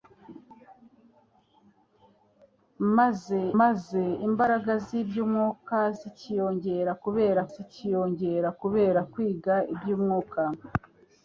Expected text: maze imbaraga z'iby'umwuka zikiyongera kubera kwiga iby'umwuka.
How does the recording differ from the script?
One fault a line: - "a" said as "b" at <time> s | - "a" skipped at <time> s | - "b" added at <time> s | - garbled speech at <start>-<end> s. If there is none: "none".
- "maze" added at 3.6 s
- "zikiyongera kubera" added at 7.5 s